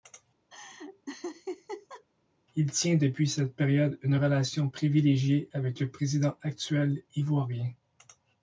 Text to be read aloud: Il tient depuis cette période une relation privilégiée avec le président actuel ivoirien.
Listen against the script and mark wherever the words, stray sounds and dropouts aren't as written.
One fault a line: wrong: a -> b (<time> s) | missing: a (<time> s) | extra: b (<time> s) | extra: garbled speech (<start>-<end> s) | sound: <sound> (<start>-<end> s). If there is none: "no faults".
sound: laugh (0.5-2.0 s)